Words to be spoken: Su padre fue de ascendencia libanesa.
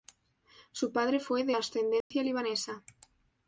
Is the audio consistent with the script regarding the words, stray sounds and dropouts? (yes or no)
no